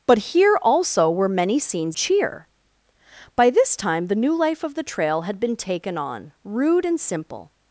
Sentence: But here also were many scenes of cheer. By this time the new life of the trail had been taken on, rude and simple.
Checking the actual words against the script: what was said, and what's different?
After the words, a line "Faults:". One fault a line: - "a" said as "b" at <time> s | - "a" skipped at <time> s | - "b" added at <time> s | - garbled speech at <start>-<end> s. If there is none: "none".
But here also were many scenes cheer. By this time the new life of the trail had been taken on, rude and simple.
Faults:
- "of" skipped at 2.0 s